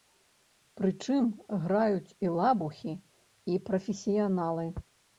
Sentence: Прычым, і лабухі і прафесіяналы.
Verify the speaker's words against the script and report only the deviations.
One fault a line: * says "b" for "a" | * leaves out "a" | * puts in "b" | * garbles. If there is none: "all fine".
* puts in "граюць"